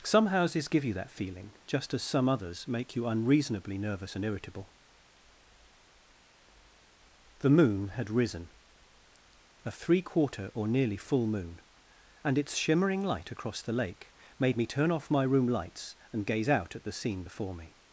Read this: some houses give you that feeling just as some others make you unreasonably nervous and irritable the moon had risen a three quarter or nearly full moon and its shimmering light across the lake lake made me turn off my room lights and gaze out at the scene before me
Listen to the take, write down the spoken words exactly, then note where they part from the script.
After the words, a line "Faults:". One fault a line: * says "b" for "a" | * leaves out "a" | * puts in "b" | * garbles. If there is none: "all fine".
some houses give you that feeling just as some others make you unreasonably nervous and irritable the moon had risen a three quarter or nearly full moon and its shimmering light across the lake made me turn off my room lights and gaze out at the scene before me
Faults:
* leaves out "lake"